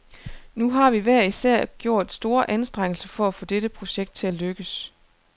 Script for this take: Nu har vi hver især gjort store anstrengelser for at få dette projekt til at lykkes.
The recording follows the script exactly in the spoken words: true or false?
true